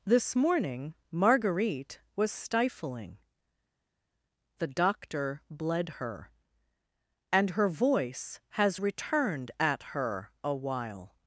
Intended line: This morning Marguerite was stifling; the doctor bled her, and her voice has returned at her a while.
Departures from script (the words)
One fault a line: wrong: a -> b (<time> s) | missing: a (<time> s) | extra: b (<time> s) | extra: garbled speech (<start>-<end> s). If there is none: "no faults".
no faults